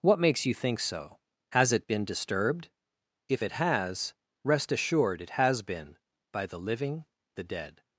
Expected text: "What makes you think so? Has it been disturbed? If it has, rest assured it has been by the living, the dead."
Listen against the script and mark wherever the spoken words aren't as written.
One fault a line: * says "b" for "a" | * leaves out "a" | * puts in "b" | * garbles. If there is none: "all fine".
all fine